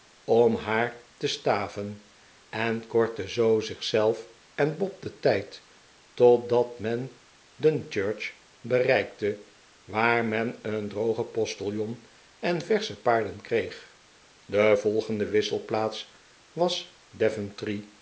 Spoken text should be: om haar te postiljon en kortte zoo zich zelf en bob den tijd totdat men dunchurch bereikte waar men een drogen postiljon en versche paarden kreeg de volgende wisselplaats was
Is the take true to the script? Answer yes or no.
no